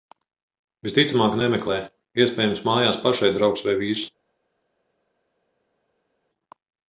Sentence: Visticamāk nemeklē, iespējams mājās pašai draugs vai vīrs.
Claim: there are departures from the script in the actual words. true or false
false